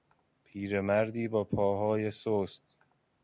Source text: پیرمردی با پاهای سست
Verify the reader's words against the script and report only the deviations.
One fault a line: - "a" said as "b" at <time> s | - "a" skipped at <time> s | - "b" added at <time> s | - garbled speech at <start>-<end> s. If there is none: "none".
none